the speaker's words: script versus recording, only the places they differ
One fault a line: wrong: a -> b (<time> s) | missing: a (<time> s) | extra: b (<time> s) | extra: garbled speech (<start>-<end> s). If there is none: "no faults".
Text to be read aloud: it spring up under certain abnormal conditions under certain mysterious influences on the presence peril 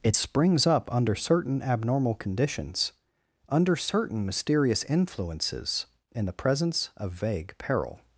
wrong: spring -> springs (0.1 s)
wrong: on -> in (6.1 s)
extra: of vague (7.0 s)